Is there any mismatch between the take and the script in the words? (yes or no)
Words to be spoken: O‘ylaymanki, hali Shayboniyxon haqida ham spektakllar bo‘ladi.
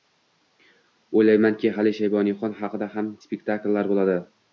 no